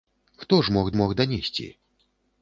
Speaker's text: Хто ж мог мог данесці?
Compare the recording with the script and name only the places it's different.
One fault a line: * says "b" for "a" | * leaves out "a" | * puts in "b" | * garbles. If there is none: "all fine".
all fine